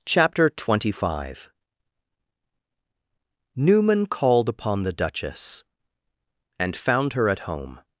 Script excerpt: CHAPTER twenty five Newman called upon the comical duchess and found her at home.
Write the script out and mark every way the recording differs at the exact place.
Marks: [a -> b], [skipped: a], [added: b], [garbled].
CHAPTER twenty five Newman called upon the [skipped: comical] duchess and found her at home.